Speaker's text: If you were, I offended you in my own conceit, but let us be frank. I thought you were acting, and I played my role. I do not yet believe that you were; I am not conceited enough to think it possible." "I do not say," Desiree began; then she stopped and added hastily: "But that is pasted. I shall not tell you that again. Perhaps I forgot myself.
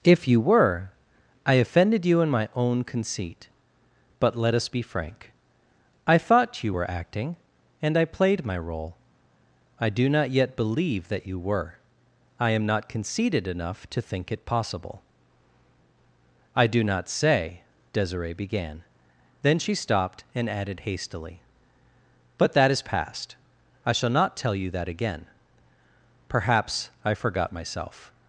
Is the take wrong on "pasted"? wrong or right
wrong